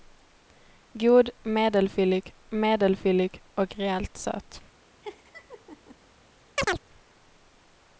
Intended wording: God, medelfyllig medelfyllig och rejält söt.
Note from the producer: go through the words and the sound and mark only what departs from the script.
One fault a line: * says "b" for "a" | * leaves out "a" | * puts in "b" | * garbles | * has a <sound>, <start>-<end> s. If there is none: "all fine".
* has a laugh, 5.0-6.0 s
* has a chirp, 6.6-6.8 s